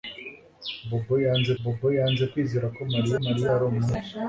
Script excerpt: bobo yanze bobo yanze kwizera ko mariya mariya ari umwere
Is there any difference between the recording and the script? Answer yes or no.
no